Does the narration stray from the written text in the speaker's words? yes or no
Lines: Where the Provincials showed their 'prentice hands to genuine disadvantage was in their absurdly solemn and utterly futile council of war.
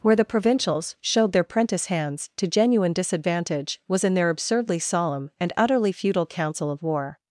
no